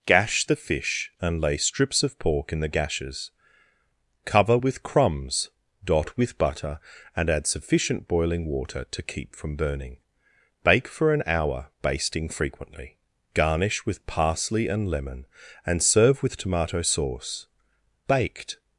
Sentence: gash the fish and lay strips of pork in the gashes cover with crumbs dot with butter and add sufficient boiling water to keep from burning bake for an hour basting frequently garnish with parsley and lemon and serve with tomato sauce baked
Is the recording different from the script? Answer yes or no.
no